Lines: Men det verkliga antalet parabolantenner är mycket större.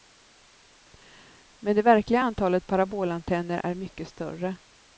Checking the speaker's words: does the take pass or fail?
pass